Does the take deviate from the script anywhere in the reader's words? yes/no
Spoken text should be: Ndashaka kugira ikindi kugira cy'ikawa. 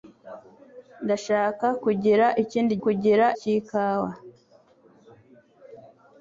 no